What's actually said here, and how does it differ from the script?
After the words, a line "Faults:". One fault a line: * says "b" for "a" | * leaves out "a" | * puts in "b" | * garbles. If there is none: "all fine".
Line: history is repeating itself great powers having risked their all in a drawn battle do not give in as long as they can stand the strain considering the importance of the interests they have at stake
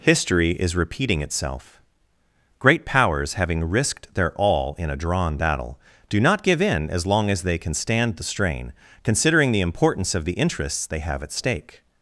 history is repeating itself great powers having risked their all in a drawn battle do not give in as long as they can stand the strain considering the importance of the interests they have at stake
Faults:
all fine